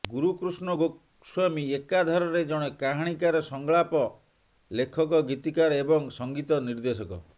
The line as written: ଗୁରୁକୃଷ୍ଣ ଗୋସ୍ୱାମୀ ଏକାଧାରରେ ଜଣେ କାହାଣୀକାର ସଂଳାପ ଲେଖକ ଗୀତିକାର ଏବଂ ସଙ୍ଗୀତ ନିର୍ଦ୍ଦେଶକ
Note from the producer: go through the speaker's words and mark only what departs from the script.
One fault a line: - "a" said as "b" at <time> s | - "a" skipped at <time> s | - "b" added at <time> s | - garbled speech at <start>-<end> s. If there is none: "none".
none